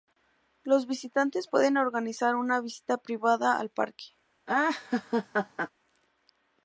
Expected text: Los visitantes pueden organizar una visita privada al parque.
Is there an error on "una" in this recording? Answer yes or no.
no